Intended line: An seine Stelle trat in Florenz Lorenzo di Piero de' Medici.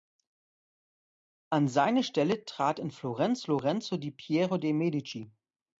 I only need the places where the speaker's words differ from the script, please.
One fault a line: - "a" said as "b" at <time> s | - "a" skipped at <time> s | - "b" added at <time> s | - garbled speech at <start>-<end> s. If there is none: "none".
none